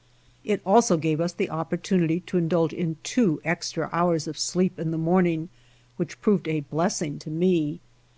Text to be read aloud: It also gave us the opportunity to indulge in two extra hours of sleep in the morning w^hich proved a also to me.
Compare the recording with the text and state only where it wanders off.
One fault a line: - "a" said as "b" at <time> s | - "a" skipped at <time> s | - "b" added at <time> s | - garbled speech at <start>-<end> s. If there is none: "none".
- "also" said as "blessing" at 6.6 s